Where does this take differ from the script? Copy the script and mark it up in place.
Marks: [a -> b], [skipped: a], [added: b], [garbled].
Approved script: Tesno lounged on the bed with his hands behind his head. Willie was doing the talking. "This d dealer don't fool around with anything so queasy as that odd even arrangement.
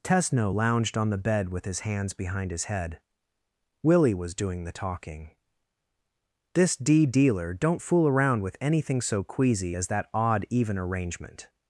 Tesno lounged on the bed with his hands behind his head. Willie was doing the talking. "This d dealer don't fool around with anything so queasy as that odd even arrangement.